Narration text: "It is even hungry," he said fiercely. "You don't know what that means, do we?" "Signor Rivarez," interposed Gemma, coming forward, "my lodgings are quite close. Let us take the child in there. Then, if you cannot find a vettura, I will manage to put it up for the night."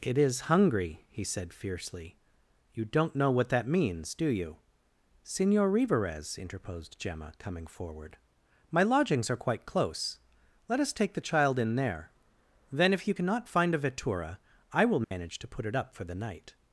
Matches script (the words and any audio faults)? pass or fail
fail